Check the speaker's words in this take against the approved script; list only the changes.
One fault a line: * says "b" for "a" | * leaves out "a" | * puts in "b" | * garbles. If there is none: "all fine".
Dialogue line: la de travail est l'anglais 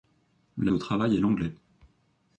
all fine